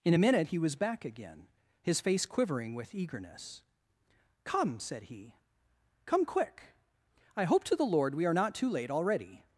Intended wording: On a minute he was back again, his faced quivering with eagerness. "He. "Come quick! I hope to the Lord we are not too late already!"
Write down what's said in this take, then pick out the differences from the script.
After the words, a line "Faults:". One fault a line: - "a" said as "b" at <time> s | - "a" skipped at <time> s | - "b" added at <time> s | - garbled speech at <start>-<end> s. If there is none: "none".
In a minute he was back again, his face quivering with eagerness. "Come!" said he. "Come quick! I hope to the Lord we are not too late already!"
Faults:
- "On" said as "In" at 0.0 s
- "faced" said as "face" at 2.0 s
- "Come said" added at 4.4 s